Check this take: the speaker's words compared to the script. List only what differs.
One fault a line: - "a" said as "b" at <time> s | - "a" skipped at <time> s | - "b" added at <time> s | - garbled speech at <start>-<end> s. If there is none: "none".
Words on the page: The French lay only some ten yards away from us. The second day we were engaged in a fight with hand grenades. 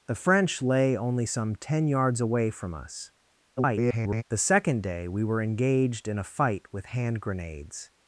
- garbled speech at 3.6-4.2 s